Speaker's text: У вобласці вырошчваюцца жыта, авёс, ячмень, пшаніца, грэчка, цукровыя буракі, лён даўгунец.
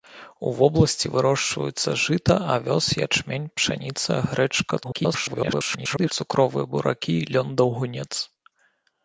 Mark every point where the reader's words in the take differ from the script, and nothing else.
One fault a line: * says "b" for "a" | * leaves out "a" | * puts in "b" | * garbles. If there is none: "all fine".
* garbles